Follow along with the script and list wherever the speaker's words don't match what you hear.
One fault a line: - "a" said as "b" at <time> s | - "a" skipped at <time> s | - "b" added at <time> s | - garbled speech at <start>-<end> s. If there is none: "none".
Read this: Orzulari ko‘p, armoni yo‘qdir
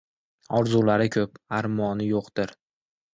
none